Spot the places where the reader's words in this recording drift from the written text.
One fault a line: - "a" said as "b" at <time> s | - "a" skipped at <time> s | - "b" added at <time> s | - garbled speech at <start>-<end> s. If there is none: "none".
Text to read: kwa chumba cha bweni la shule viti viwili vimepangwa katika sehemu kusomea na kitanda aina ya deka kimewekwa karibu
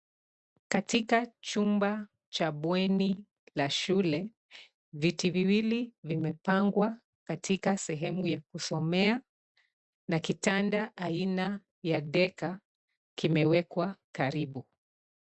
- "kwa" said as "katika" at 0.7 s
- "ya" added at 8.3 s